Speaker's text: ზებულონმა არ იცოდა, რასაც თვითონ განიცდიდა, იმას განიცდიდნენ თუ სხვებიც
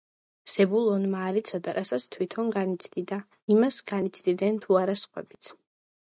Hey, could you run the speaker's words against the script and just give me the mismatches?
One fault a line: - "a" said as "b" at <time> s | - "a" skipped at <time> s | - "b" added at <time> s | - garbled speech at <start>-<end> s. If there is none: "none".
- "არა" added at 4.8 s